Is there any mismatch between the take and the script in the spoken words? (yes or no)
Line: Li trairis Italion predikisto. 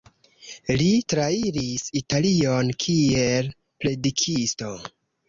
yes